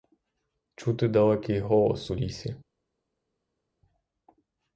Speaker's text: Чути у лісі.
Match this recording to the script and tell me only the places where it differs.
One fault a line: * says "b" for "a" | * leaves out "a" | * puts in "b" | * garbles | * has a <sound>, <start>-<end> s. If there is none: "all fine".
* puts in "далекий голос"